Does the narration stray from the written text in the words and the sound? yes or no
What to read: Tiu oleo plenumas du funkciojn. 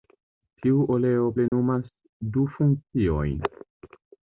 yes